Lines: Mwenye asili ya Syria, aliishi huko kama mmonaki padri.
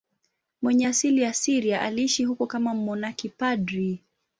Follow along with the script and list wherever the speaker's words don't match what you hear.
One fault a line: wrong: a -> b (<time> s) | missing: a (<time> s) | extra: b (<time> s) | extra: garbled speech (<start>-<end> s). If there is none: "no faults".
no faults